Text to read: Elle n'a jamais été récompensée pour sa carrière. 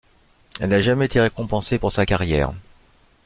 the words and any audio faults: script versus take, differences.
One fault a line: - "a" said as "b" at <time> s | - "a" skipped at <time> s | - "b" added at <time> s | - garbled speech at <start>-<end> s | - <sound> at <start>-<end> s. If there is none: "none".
none